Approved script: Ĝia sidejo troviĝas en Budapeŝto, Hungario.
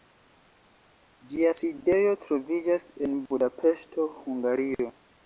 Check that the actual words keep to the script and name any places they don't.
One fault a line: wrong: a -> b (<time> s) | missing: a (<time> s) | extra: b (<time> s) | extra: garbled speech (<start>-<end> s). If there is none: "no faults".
no faults